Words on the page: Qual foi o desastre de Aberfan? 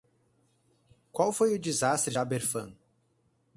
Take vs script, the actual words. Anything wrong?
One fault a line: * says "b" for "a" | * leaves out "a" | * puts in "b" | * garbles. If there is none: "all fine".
* leaves out "de"